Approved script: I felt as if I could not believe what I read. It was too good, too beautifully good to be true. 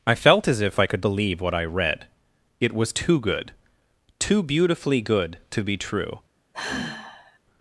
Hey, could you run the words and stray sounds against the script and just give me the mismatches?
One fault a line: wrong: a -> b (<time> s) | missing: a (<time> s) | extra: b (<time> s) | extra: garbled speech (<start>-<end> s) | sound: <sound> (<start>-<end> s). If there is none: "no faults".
missing: not (1.1 s)
sound: sigh (6.5-7.4 s)